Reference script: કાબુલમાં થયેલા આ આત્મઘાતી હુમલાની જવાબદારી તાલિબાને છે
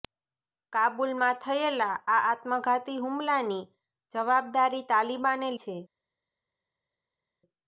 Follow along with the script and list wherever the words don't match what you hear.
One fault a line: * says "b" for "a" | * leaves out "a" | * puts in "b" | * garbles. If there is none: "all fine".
all fine